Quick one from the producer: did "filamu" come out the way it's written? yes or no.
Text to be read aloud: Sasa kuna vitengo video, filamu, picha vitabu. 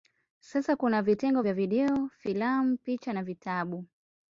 yes